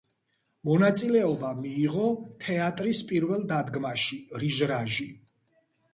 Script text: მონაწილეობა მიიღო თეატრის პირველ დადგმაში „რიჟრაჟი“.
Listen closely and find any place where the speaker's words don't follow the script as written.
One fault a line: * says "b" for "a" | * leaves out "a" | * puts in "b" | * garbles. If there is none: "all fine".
all fine